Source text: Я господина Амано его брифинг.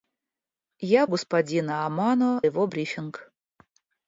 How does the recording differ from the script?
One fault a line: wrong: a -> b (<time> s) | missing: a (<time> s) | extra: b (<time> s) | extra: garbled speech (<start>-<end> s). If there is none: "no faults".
no faults